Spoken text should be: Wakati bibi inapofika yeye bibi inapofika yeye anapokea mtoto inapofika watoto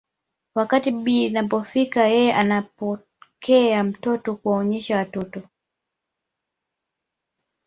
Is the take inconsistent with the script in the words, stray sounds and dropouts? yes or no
yes